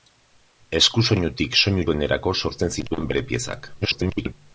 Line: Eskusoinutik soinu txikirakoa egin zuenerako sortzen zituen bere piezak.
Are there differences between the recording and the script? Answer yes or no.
yes